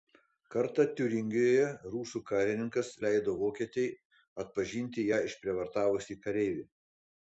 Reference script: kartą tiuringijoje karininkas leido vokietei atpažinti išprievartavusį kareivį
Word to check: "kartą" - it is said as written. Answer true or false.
true